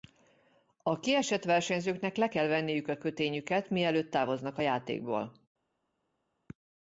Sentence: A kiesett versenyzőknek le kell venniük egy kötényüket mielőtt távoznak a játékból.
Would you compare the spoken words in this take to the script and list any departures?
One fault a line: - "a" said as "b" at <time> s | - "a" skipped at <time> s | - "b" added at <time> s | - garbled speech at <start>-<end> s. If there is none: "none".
- "egy" said as "a" at 2.9 s